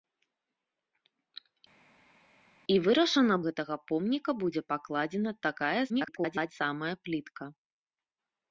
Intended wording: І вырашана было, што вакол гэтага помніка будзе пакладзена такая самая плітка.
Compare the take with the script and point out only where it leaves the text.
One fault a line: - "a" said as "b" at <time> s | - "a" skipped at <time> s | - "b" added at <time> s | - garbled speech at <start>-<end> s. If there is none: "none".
- "было што вакол" skipped at 3.4 s
- garbled speech at 5.9-6.5 s